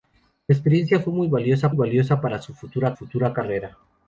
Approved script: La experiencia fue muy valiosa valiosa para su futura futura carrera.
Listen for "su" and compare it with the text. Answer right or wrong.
right